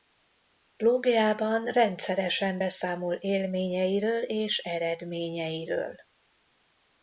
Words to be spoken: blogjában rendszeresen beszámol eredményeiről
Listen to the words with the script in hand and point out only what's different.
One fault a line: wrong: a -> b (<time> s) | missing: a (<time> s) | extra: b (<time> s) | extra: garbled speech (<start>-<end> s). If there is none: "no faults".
extra: élményeiről és (3.1 s)